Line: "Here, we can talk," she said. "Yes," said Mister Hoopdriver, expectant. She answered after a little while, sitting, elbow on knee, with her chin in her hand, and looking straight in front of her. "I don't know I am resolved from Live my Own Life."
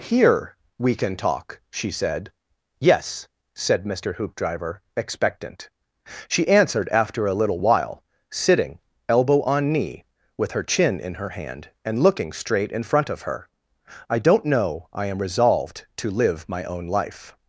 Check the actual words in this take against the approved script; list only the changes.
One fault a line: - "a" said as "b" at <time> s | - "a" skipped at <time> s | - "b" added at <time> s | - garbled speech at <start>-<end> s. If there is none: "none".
- "from" said as "to" at 16.0 s